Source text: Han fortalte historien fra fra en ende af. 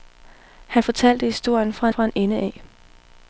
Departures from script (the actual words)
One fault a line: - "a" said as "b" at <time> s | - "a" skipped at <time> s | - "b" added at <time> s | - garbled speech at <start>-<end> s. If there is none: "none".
none